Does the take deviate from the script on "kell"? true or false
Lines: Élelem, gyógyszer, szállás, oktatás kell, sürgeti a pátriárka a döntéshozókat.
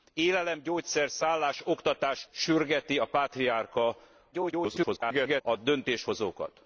true